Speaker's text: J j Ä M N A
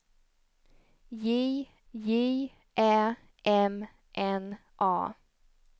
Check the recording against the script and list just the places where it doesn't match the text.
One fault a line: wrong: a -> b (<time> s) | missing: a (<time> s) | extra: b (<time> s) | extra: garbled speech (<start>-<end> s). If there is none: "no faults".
no faults